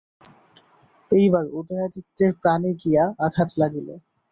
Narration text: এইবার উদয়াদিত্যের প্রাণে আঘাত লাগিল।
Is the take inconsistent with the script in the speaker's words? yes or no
yes